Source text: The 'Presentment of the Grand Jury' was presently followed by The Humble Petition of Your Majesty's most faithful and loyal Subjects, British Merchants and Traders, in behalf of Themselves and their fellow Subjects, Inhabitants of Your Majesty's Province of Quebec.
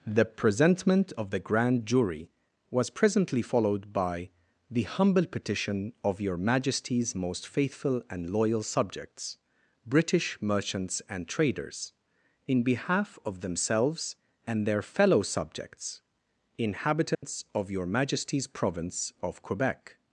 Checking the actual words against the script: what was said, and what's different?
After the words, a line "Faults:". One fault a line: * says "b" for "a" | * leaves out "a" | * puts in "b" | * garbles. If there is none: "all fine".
The 'Presentment of the Grand Jury' was presently followed by The Humble Petition of Your Majesty's most faithful and loyal Subjects, British Merchants and Traders, in behalf of Themselves and their fellow Subjects, Inhabitants of Your Majesty's Province of Quebec.
Faults:
all fine